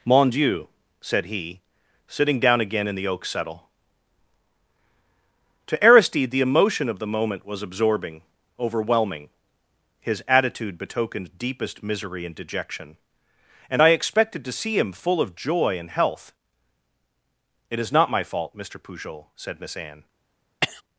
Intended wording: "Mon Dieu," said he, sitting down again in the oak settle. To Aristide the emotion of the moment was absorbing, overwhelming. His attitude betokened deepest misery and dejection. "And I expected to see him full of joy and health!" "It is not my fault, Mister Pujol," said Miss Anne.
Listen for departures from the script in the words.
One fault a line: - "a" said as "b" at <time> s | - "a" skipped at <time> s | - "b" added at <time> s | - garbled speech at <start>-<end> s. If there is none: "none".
none